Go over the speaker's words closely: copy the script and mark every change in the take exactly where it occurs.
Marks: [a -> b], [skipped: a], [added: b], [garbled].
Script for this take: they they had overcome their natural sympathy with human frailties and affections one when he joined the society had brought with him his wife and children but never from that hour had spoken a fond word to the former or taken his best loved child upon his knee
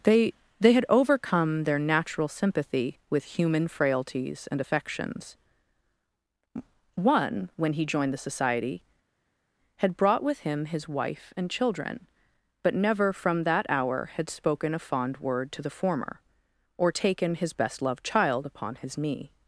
they they had overcome their natural sympathy with human frailties and affections one when he joined the society had brought with him his wife and children but never from that hour had spoken a fond word to the former or taken his best loved child upon his knee